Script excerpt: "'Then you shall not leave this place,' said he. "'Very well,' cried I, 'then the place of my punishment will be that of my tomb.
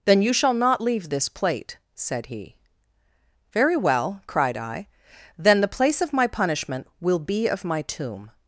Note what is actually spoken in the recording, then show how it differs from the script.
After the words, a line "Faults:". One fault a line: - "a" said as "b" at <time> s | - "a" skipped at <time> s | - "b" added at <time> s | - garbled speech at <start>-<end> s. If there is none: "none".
"'Then you shall not leave this plate,' said he. "'Very well,' cried I, 'then the place of my punishment will be of my tomb.
Faults:
- "place" said as "plate" at 1.3 s
- "that" skipped at 7.5 s